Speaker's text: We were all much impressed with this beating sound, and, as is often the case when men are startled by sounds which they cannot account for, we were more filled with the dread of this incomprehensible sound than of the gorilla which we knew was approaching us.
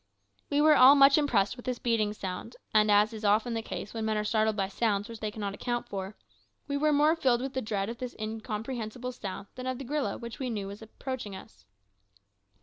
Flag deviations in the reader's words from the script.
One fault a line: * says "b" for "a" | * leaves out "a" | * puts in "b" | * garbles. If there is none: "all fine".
all fine